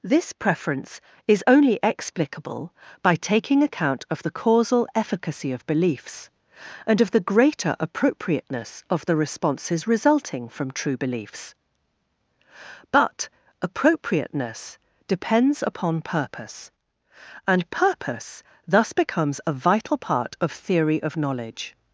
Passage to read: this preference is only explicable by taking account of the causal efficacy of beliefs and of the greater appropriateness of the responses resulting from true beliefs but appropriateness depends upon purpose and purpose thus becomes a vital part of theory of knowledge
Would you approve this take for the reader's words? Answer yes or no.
yes